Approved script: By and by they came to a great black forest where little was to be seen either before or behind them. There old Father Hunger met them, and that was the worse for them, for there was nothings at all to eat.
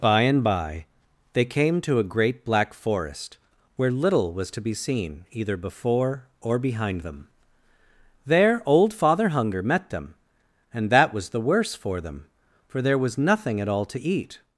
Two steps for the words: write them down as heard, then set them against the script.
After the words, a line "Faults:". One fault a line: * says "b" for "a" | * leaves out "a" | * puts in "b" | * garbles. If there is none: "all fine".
By and by they came to a great black forest where little was to be seen either before or behind them. There old Father Hunger met them, and that was the worse for them, for there was nothing at all to eat.
Faults:
* says "nothing" for "nothings"